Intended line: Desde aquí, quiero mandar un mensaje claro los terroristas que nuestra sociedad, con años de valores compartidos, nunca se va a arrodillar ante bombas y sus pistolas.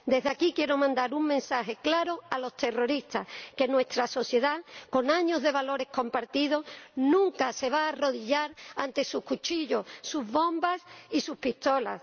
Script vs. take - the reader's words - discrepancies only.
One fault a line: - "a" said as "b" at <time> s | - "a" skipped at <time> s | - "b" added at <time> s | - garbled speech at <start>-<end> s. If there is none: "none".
- "a" added at 2.3 s
- "sus cuchillos sus" added at 9.0 s